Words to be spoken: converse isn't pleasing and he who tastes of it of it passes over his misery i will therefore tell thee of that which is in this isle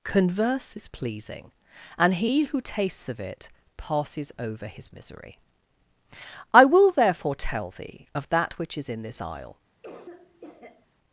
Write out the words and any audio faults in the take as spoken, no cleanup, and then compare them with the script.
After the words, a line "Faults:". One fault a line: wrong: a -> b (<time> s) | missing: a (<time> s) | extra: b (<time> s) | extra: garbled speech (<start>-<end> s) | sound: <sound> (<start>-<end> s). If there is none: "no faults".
converse is pleasing and he who tastes of it passes over his misery i will therefore tell thee of that which is in this isle
Faults:
wrong: isn't -> is (0.8 s)
missing: of it (3.5 s)
sound: cough (9.8-10.9 s)